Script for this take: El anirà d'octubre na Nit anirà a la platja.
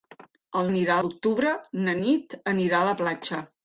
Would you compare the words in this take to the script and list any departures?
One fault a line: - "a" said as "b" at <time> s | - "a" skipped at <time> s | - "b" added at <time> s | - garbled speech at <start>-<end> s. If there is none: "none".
none